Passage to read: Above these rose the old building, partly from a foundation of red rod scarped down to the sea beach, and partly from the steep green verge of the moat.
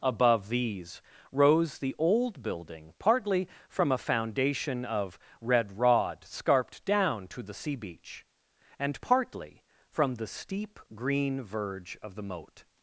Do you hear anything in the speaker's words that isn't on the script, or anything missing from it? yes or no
no